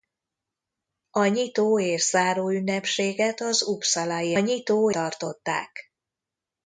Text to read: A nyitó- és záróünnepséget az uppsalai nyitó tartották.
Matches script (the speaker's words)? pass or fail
pass